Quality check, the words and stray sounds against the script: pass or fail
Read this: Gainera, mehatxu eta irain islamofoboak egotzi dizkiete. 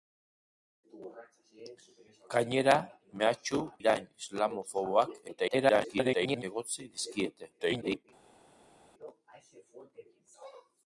fail